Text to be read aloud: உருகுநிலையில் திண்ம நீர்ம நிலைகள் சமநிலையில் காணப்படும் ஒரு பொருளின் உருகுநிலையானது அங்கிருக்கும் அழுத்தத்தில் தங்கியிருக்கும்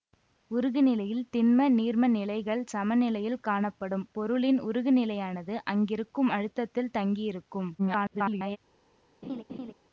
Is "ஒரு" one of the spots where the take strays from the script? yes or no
yes